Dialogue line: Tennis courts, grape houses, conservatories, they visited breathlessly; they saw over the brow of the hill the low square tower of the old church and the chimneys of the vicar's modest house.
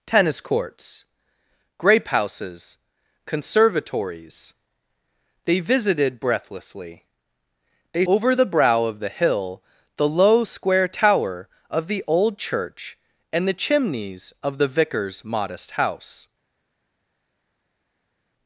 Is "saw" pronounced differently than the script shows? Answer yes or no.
yes